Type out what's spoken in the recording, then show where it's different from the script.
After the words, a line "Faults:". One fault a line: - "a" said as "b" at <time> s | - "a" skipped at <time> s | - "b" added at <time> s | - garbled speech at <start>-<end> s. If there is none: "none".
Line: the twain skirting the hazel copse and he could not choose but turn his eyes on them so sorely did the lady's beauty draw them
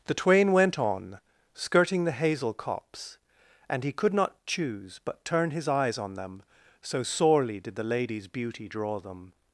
the twain went on skirting the hazel copse and he could not choose but turn his eyes on them so sorely did the lady's beauty draw them
Faults:
- "went on" added at 0.5 s